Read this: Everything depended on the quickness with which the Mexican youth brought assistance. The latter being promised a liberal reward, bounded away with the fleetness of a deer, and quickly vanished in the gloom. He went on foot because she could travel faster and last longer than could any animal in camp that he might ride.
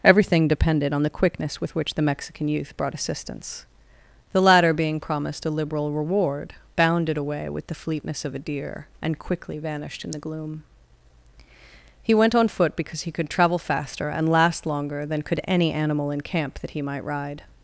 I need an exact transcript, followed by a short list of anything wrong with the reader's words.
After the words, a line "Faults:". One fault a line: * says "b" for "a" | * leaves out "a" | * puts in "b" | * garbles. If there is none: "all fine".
Everything depended on the quickness with which the Mexican youth brought assistance. The latter being promised a liberal reward, bounded away with the fleetness of a deer, and quickly vanished in the gloom. He went on foot because he could travel faster and last longer than could any animal in camp that he might ride.
Faults:
* says "he" for "she"